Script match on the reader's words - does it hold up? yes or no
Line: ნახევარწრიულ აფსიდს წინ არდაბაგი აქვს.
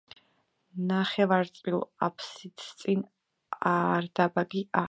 yes